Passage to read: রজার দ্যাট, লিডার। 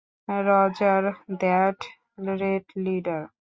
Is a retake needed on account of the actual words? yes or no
yes